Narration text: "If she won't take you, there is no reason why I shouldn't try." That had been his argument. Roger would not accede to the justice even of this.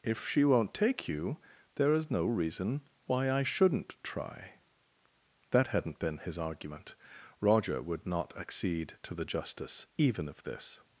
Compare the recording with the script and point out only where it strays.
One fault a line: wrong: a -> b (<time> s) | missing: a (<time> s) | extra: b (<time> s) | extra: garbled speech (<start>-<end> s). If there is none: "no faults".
wrong: had -> hadn't (5.7 s)